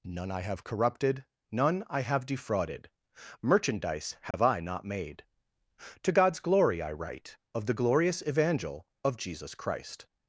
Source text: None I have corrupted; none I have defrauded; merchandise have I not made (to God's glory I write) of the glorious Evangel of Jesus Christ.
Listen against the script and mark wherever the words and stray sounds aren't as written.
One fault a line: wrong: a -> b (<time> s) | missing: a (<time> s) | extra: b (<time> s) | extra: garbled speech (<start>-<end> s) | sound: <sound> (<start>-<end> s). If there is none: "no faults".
sound: dropout (4.3-4.3 s)